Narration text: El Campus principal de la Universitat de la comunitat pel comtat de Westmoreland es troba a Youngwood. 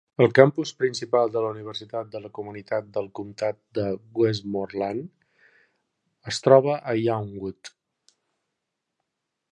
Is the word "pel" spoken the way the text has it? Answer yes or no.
no